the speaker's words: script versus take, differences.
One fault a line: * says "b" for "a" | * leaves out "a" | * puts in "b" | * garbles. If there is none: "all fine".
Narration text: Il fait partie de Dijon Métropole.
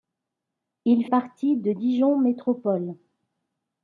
* leaves out "fait"